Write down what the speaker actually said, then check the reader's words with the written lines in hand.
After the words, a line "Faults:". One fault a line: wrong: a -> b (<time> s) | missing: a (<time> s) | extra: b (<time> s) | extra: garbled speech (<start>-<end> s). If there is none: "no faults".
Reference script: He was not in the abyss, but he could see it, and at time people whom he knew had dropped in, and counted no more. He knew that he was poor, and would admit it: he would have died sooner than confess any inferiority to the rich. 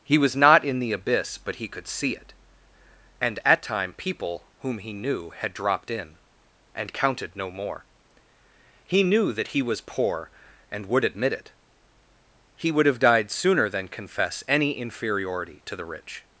He was not in the abyss, but he could see it, and at time people whom he knew had dropped in, and counted no more. He knew that he was poor, and would admit it: he would have died sooner than confess any inferiority to the rich.
Faults:
no faults